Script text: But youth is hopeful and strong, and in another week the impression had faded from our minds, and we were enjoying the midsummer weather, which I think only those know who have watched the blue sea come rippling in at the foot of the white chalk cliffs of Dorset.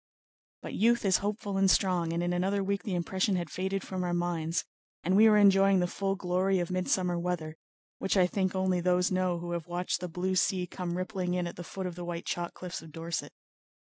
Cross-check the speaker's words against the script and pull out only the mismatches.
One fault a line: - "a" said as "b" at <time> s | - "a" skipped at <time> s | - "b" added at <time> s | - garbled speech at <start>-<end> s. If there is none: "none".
- "full glory of" added at 5.8 s